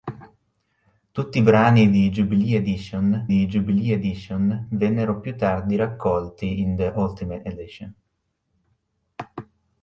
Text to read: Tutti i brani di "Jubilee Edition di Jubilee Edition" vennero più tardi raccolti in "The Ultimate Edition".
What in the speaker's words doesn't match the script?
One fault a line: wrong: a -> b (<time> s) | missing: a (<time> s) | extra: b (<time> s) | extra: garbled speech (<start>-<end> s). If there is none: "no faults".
no faults